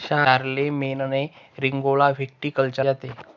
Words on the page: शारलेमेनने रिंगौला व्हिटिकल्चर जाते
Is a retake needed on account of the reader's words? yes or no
no